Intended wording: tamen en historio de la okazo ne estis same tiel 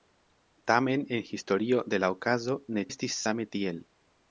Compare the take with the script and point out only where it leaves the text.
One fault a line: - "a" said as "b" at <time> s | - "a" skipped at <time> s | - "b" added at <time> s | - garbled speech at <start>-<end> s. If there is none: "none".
none